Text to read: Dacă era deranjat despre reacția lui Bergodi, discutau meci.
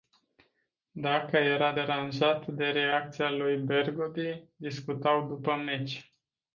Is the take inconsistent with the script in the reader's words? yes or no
yes